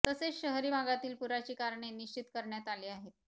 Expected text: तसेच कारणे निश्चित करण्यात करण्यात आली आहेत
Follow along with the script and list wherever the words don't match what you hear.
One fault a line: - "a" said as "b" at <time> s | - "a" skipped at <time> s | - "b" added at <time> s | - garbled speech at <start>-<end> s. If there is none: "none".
- "शहरी भागातील पुराची" added at 0.3 s
- "करण्यात" skipped at 2.7 s